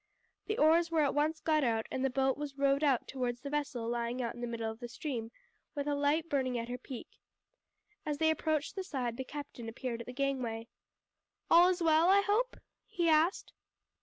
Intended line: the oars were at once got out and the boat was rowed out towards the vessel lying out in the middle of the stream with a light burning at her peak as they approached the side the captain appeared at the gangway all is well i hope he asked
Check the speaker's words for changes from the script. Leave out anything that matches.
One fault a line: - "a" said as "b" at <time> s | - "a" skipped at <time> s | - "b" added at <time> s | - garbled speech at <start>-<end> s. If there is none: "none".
none